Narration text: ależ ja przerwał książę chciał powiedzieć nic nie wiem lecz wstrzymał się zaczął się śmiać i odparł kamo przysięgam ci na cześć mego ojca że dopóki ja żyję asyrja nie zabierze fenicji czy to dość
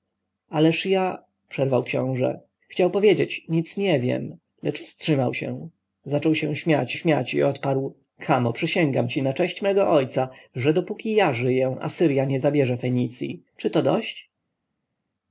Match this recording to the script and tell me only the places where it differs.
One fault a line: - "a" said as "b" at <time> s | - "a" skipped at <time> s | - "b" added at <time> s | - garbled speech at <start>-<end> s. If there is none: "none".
- "śmiać" added at 6.9 s